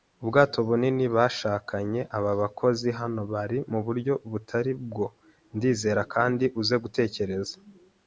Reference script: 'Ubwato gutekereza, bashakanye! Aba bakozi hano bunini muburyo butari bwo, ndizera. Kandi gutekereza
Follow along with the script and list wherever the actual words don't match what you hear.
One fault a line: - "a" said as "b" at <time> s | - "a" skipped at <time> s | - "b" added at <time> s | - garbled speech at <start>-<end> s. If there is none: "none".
- "gutekereza" said as "bunini" at 0.7 s
- "bunini" said as "bari" at 3.3 s
- "uze" added at 6.6 s